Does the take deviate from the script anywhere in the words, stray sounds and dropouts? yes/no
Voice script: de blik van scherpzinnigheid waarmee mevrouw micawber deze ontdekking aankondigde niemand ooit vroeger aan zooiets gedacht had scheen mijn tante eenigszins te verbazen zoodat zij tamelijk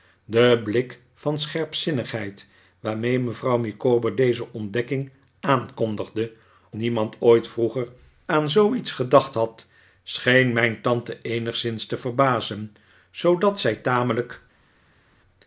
no